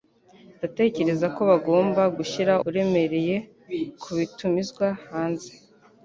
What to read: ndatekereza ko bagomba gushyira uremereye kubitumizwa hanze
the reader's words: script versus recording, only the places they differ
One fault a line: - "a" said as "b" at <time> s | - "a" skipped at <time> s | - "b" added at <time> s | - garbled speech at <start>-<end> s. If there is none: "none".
none